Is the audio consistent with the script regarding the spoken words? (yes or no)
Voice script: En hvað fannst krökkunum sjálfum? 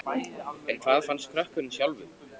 yes